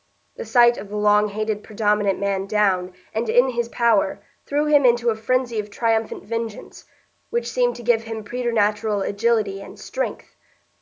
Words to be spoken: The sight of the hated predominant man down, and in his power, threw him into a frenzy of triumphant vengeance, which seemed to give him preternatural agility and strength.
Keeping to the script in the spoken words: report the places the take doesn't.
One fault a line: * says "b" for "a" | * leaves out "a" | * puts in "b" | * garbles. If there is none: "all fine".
* puts in "long"